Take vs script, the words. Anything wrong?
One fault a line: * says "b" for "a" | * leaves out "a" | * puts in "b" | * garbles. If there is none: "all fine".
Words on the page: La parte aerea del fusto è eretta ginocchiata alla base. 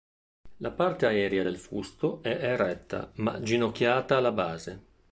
* puts in "ma"